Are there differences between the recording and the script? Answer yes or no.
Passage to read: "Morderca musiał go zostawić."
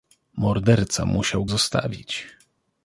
yes